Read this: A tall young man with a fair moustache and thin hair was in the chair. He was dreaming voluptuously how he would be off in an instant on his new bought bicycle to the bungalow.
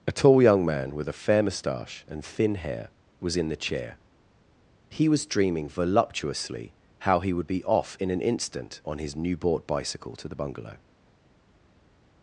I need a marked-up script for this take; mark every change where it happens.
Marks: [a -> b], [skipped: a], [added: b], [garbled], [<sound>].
A tall young man with a fair moustache and thin hair was in the chair. He was dreaming voluptuously how he would be off in an instant on his new bought bicycle to the bungalow.